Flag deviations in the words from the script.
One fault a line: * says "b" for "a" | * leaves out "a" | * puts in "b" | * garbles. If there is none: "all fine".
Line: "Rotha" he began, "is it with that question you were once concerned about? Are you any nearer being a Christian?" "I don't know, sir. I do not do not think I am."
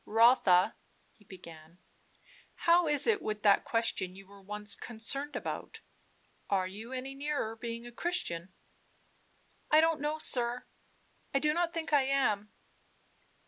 * puts in "how"
* leaves out "do not"